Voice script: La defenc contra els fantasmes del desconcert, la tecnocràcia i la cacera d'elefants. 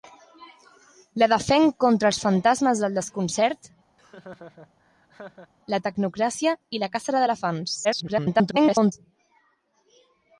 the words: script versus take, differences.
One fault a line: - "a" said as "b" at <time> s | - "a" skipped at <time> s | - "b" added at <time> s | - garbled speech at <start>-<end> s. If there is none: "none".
- garbled speech at 7.8-8.9 s